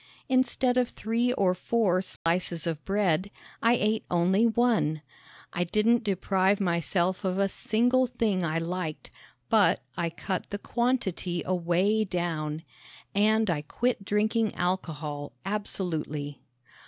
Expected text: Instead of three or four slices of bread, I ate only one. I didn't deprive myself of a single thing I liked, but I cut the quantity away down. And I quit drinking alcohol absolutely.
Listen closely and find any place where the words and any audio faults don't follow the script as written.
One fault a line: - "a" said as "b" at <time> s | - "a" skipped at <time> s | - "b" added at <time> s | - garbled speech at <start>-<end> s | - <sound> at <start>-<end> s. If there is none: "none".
- dropout at 2.2-2.3 s